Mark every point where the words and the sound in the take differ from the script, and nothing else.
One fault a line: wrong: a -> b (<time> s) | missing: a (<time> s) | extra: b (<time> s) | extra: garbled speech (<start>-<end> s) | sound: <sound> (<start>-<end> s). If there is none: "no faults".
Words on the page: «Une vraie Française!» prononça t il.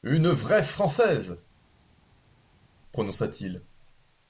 no faults